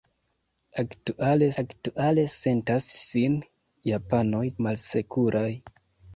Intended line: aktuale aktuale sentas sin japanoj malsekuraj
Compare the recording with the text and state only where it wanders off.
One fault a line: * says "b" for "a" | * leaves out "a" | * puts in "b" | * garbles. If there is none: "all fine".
all fine